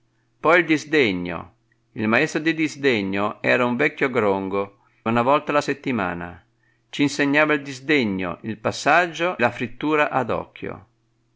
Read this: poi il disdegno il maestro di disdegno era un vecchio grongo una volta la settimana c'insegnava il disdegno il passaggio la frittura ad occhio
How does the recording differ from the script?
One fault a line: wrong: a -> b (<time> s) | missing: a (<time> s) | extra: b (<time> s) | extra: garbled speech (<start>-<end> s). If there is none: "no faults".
no faults